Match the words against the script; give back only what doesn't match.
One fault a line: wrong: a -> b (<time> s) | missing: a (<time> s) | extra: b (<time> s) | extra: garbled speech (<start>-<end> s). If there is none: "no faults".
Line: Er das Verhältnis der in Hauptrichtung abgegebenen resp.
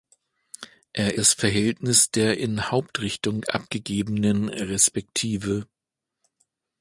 no faults